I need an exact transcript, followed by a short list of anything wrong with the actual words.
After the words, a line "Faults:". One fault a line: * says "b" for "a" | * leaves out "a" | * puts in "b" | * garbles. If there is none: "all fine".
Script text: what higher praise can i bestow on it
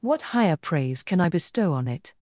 what higher praise can i bestow on it
Faults:
all fine